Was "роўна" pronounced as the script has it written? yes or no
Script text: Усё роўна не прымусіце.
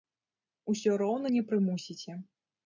yes